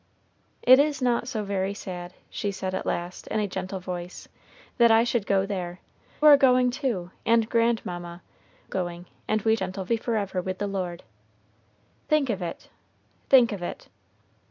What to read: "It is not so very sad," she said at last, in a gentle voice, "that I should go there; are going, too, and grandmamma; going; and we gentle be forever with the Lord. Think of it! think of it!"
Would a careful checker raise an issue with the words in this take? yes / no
no